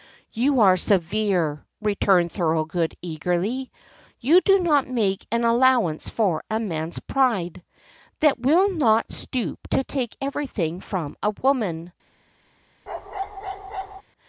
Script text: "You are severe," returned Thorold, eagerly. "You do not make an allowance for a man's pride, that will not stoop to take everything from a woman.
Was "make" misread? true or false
false